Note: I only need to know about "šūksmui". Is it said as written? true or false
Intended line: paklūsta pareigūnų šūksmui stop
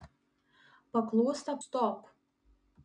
false